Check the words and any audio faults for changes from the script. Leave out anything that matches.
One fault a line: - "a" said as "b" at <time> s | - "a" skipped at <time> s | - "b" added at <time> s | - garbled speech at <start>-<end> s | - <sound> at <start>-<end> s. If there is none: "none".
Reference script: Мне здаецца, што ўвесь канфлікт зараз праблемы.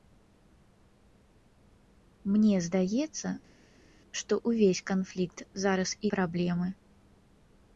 none